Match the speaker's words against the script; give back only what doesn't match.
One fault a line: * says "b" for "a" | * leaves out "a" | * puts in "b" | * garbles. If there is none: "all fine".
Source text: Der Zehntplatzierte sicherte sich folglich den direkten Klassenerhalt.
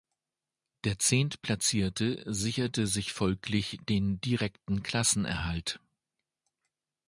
all fine